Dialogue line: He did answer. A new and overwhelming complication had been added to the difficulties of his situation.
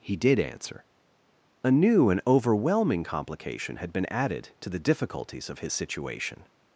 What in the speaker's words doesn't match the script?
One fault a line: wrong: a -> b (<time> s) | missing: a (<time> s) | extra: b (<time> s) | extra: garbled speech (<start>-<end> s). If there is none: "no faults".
no faults